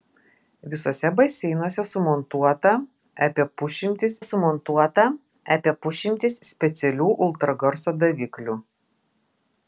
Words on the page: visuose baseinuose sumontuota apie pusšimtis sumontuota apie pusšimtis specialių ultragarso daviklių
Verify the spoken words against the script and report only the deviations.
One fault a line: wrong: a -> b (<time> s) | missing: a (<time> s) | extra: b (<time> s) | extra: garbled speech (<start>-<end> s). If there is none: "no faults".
no faults